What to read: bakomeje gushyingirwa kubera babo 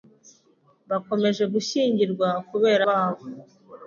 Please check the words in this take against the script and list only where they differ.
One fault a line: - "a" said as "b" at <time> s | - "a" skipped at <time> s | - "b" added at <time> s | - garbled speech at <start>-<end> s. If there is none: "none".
none